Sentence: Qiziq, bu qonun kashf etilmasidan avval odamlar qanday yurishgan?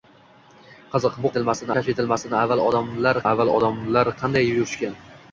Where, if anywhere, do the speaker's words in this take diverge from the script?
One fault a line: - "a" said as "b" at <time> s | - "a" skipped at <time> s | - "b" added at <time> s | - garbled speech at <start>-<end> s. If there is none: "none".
- "qonun" said as "etilmasidan" at 1.3 s
- "avval odamlar" added at 3.3 s